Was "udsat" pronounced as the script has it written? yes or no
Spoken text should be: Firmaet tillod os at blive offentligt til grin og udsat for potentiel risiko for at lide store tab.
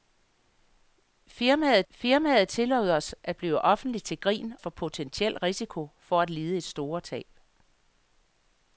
no